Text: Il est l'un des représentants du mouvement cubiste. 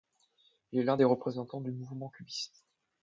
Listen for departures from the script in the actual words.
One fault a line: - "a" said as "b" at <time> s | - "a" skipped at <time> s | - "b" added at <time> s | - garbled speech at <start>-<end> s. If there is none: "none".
none